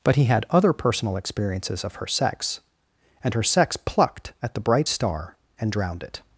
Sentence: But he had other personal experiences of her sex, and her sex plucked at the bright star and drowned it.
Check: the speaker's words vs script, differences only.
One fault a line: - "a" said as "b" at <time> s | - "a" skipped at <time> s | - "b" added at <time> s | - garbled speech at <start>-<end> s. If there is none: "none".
none